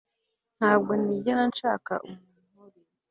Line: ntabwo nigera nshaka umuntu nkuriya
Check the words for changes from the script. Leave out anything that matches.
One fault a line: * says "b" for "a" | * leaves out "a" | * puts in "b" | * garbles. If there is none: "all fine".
all fine